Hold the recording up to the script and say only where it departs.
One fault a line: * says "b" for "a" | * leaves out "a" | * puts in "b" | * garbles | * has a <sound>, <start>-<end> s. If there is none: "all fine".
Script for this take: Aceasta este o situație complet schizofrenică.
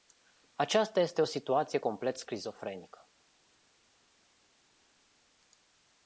all fine